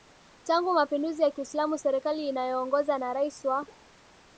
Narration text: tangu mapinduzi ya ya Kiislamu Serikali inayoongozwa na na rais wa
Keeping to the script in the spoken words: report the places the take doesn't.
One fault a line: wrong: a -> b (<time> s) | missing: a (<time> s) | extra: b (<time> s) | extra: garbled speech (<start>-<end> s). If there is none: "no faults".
missing: ya (1.3 s)
missing: na (3.1 s)